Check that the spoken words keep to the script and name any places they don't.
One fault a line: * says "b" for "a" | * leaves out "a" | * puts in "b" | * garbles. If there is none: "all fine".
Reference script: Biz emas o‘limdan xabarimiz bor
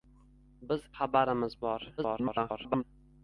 * leaves out "emas o‘limdan"
* garbles